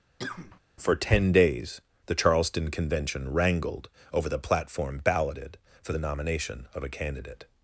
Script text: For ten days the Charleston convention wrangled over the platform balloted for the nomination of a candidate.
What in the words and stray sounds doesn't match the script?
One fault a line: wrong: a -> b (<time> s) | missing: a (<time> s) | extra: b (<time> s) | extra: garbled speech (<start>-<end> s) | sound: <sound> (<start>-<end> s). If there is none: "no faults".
sound: cough (0.2-0.6 s)